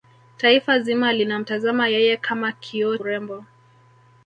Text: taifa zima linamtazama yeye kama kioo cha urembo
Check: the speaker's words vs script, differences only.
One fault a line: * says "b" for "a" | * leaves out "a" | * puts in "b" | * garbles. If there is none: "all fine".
* leaves out "cha"